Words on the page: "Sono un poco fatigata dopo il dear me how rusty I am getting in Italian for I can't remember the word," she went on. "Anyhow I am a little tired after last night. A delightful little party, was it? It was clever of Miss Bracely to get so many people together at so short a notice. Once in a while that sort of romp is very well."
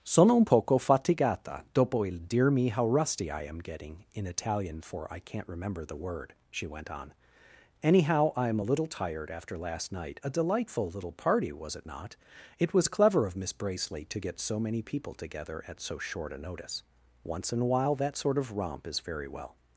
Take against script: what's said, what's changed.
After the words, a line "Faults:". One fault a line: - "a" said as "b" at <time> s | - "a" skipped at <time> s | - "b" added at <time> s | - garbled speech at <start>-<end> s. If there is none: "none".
"Sono un poco fatigata dopo il dear me how rusty I am getting in Italian for I can't remember the word," she went on. "Anyhow I am a little tired after last night. A delightful little party, was it not? It was clever of Miss Bracely to get so many people together at so short a notice. Once in a while that sort of romp is very well."
Faults:
- "not" added at 11.8 s